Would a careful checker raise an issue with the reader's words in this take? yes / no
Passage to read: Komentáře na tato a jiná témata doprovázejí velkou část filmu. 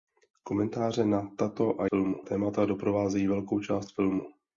yes